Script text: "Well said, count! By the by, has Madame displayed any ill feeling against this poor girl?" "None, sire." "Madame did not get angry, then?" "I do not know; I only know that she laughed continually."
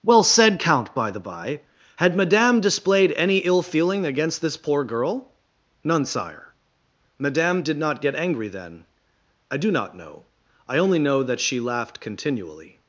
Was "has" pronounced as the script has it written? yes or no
no